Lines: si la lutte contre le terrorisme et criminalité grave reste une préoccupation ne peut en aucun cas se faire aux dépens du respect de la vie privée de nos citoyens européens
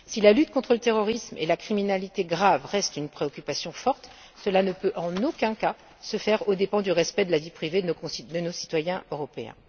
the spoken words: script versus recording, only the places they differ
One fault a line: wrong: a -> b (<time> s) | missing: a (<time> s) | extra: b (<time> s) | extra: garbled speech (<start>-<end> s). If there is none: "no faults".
extra: la (1.4 s)
extra: forte cela (3.7 s)